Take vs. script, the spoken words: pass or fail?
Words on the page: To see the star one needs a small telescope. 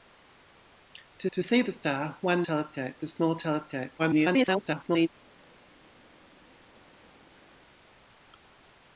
fail